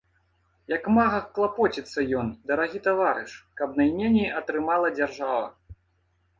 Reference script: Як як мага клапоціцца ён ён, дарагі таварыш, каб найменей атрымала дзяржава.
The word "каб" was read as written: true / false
true